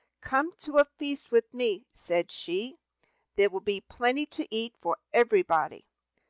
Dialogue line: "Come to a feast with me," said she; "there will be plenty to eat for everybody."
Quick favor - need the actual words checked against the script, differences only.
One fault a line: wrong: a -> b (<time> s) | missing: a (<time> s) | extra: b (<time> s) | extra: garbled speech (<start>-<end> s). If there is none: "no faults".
no faults